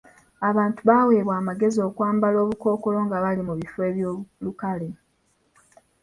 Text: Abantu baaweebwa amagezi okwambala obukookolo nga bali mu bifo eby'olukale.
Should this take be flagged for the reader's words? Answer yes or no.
no